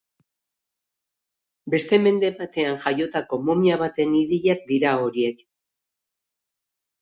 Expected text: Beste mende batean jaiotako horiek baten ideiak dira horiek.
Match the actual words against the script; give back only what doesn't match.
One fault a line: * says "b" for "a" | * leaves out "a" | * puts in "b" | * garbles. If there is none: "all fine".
* says "momia" for "horiek"